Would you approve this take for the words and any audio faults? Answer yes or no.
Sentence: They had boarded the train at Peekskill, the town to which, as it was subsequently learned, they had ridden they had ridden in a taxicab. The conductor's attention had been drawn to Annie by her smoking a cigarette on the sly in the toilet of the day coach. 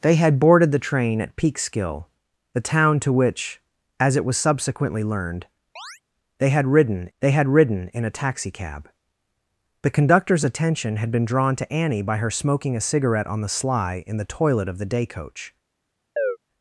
no